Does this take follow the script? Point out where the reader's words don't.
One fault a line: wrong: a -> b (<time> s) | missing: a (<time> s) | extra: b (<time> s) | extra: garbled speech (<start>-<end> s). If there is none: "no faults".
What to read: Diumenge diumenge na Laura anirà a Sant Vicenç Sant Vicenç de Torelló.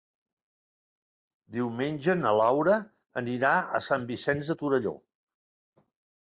missing: diumenge (2.1 s)
missing: Sant Vicenç (4.5 s)